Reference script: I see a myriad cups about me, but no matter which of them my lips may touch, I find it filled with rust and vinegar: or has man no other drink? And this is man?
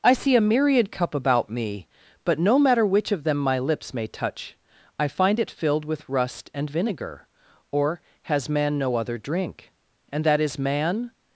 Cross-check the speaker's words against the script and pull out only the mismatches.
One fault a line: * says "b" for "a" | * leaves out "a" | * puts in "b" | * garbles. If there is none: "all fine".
* says "cup" for "cups"
* says "that" for "this"